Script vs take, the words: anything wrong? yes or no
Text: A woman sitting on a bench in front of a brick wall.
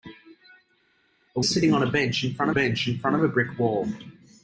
yes